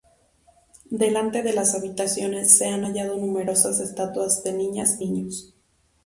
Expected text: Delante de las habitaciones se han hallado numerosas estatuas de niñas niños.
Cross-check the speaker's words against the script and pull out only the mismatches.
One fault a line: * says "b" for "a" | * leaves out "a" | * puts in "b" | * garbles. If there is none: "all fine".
all fine